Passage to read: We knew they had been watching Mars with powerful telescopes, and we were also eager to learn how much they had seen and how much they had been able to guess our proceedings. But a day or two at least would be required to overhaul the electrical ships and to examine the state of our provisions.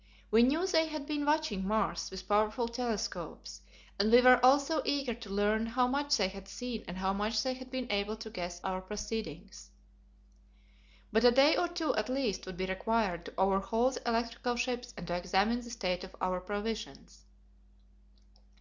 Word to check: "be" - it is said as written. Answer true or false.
true